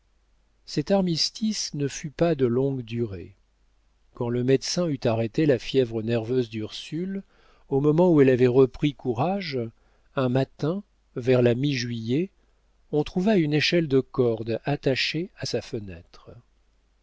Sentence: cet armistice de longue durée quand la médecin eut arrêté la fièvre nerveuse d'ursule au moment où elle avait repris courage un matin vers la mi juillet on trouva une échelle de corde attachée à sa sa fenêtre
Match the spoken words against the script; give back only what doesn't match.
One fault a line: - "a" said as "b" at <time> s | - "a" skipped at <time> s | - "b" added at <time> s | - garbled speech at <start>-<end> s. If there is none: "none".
- "ne fut pas" added at 1.8 s
- "la" said as "le" at 4.3 s
- "sa" skipped at 15.6 s